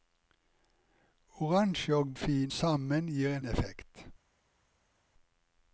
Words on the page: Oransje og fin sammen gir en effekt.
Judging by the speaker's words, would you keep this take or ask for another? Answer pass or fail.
pass